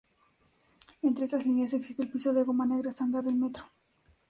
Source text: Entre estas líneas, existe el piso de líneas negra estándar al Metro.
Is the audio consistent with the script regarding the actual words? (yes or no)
no